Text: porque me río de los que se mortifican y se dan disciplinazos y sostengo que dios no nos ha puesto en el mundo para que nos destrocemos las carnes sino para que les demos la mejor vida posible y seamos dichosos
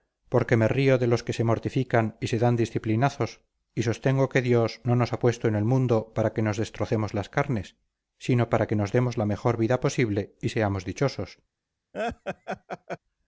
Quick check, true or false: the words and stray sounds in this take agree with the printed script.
false